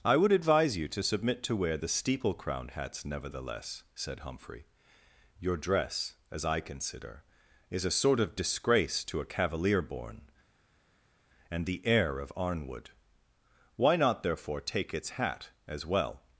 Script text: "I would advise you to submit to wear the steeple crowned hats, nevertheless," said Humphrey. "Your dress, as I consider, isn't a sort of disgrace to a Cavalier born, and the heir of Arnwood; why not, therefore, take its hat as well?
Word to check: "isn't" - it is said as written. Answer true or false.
false